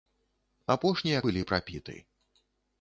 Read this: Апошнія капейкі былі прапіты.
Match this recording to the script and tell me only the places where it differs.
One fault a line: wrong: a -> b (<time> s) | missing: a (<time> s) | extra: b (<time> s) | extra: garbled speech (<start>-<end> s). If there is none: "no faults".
missing: капейкі (1.2 s)